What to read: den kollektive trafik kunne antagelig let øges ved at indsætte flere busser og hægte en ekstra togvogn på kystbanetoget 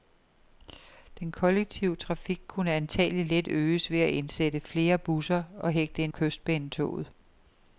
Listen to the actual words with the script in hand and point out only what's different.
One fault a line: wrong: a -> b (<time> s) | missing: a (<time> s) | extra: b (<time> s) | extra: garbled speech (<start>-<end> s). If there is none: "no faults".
missing: ekstra togvogn på (6.1 s)